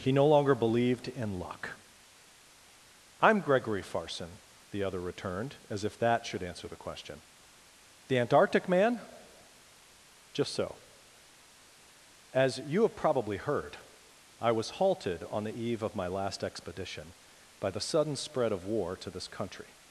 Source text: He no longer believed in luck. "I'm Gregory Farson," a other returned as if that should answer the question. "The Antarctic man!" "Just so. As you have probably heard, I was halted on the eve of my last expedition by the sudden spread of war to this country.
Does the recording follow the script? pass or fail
fail